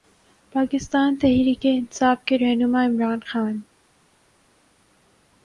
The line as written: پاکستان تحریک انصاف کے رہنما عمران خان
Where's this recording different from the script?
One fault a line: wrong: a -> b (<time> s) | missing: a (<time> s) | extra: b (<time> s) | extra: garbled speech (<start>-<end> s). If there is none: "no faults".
no faults